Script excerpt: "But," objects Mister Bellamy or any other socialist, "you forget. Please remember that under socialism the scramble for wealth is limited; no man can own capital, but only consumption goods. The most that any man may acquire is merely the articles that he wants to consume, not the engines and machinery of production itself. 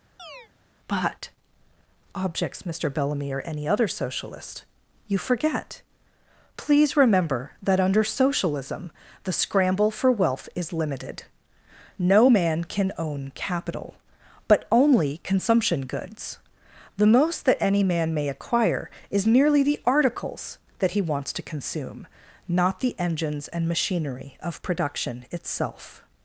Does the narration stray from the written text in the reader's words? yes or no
no